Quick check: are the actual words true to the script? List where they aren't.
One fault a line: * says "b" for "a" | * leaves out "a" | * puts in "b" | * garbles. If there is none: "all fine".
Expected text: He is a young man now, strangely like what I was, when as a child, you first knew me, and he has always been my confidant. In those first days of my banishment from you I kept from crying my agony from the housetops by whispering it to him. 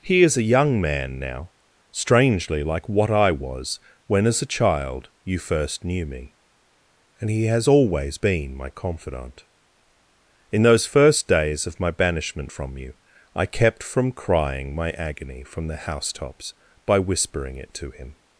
all fine